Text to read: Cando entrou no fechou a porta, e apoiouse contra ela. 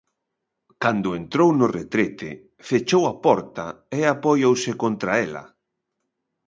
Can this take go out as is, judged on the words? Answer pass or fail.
fail